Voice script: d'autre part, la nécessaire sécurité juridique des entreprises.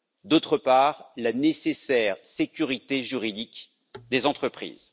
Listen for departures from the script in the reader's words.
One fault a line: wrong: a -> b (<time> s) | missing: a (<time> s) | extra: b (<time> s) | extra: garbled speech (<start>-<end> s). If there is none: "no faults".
no faults